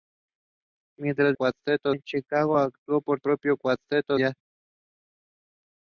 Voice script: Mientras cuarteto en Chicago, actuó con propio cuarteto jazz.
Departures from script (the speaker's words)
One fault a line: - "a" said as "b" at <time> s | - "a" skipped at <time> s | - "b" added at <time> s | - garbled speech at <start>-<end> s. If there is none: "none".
none